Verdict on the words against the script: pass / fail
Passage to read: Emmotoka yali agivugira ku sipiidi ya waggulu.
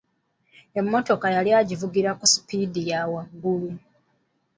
pass